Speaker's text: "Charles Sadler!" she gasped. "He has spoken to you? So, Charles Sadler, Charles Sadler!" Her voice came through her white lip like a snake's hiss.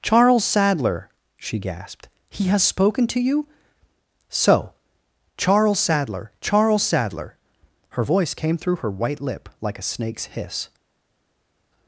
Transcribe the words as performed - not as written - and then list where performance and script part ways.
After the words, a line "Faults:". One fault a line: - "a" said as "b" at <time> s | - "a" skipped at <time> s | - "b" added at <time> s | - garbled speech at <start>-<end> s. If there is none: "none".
"Charles Sadler!" she gasped. "He has spoken to you? So, Charles Sadler, Charles Sadler!" Her voice came through her white lip like a snake's hiss.
Faults:
none